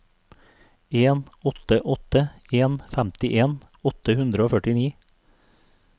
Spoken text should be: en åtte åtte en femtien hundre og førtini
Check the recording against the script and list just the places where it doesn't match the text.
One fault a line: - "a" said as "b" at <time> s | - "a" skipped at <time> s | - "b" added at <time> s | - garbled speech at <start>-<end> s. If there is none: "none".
- "åtte" added at 3.9 s